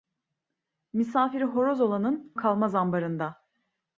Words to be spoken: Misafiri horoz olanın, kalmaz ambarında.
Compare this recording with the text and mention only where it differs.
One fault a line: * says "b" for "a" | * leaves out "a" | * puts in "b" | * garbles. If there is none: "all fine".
all fine